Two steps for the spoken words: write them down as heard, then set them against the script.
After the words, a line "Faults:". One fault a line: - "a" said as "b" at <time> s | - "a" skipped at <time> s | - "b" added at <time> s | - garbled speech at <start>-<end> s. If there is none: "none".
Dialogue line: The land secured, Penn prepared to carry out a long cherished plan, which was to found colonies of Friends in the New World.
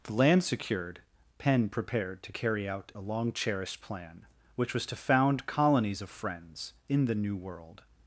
The land secured, Penn prepared to carry out a long cherished plan, which was to found colonies of Friends in the New World.
Faults:
none